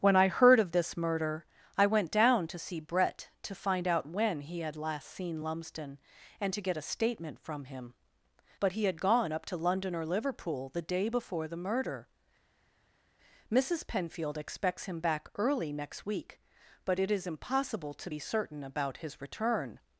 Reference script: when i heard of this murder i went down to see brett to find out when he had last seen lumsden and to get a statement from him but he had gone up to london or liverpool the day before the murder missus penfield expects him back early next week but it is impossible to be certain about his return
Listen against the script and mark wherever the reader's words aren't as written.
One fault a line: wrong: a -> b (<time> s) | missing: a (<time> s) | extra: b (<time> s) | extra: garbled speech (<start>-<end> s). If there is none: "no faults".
no faults